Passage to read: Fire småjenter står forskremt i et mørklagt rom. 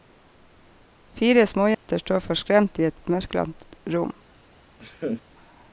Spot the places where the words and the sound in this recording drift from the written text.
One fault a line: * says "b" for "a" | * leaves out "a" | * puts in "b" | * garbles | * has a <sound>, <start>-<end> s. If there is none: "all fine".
* has a dropout, 1.7-1.9 s
* puts in "et"
* has a laugh, 4.8-5.2 s